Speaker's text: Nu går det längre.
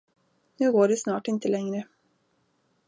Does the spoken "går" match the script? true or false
true